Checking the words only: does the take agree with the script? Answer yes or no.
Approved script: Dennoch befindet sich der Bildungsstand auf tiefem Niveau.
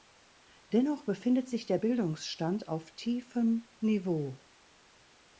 yes